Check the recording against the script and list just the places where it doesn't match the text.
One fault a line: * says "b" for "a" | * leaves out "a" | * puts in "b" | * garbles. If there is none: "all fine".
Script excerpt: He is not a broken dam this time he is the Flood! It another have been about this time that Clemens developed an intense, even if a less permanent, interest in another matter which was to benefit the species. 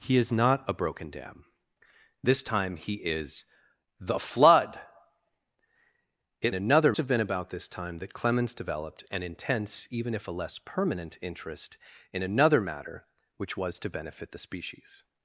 all fine